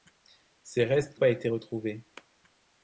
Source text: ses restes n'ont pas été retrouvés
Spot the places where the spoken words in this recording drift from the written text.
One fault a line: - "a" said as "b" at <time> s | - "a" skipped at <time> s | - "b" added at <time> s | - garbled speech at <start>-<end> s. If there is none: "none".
- "n'ont" skipped at 1.2 s